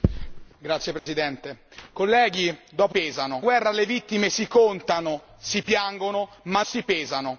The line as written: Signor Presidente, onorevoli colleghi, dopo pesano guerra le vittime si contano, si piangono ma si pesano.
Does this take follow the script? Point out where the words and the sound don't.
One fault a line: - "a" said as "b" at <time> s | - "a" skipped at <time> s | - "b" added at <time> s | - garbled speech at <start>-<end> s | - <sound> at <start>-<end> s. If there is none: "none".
- dropout at 1.0-1.1 s